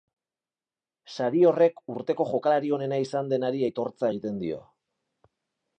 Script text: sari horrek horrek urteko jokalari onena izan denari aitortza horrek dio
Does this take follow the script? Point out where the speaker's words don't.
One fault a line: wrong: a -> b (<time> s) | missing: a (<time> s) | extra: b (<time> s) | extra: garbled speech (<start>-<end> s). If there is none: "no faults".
missing: horrek (1.8 s)
wrong: horrek -> egiten (4.1 s)